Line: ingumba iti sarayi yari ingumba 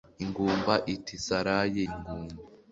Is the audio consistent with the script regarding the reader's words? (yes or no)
no